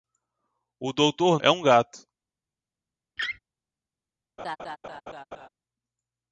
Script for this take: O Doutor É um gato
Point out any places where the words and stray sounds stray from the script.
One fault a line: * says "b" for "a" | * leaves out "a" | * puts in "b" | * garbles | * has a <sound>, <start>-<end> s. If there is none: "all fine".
* has a laugh, 3.2-3.4 s
* has a laugh, 4.4-5.5 s